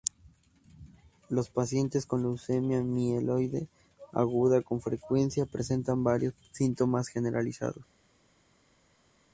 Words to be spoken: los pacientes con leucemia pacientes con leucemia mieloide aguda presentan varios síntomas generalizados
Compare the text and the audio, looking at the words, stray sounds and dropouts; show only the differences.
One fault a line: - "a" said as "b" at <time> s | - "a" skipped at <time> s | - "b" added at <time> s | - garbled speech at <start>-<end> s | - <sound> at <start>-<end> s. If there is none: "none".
- "pacientes" said as "mieloide aguda" at 2.8 s
- "leucemia mieloide aguda" said as "frecuencia" at 4.8 s